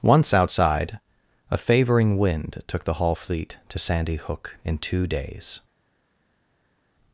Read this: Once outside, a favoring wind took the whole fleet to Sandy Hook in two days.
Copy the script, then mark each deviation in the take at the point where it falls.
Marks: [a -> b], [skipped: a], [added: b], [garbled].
Once outside, a favoring wind took the [whole -> hall] fleet to Sandy Hook in two days.